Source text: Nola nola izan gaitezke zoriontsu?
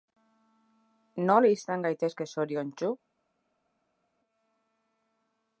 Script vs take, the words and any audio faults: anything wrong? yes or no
yes